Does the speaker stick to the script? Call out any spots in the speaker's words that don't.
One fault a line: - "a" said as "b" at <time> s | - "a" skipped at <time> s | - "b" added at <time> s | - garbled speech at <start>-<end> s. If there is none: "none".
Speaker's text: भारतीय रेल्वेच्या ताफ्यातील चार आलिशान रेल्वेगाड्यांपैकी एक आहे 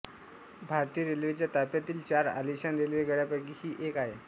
- "ही" added at 3.6 s